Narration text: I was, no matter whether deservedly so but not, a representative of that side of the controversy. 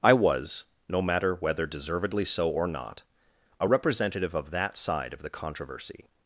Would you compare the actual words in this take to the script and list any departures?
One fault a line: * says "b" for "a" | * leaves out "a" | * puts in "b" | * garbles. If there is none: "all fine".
* says "or" for "but"